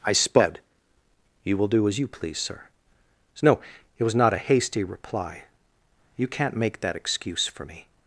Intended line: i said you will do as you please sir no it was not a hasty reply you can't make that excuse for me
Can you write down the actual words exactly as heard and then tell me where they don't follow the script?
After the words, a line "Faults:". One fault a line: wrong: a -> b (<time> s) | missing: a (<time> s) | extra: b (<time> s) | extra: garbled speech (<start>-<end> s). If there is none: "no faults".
i sped you will do as you please sir no it was not a hasty reply you can't make that excuse for me
Faults:
wrong: said -> sped (0.1 s)